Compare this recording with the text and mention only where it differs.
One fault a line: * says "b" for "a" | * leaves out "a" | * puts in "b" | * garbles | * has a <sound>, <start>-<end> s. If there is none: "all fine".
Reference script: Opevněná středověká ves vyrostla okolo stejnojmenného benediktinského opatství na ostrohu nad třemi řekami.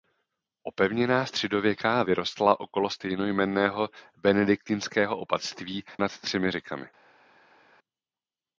* leaves out "ves"
* leaves out "na ostrohu"